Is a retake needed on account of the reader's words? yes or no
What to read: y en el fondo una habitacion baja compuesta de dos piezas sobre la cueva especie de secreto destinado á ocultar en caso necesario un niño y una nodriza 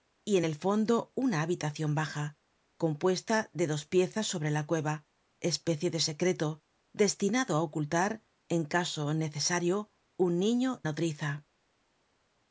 yes